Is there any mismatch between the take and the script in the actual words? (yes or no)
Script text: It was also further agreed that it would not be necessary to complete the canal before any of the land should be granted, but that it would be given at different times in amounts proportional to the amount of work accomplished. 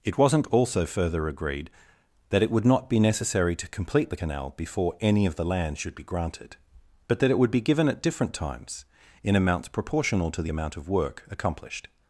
yes